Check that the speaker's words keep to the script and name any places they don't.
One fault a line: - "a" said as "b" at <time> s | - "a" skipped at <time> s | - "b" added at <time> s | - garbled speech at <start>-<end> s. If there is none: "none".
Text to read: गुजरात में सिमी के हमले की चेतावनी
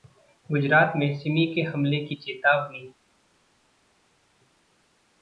none